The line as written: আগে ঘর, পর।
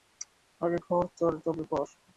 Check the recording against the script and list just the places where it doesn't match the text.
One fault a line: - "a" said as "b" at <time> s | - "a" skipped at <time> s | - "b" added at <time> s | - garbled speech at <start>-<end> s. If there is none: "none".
- "তবে" added at 1.4 s